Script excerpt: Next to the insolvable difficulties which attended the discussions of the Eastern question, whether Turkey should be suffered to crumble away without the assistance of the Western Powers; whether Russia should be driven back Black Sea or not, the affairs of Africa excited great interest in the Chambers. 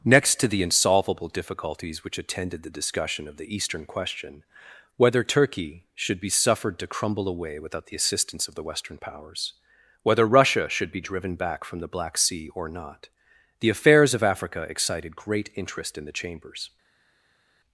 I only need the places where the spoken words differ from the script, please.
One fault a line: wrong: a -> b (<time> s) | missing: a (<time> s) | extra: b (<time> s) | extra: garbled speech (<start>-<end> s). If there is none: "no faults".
wrong: discussions -> discussion (2.7 s)
extra: from the (11.6 s)